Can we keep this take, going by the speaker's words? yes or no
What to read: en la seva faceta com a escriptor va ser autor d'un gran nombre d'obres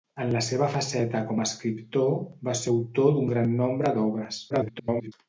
no